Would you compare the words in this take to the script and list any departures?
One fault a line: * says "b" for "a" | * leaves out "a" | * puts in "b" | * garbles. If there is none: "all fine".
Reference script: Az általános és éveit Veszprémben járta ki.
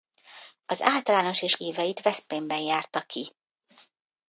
all fine